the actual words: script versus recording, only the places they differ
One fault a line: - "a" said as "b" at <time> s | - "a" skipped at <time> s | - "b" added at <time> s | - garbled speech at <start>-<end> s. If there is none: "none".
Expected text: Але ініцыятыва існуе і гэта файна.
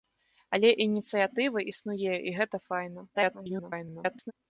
- garbled speech at 3.1-4.3 s